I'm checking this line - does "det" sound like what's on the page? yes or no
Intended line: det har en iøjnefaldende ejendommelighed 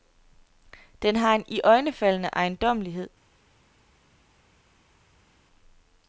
no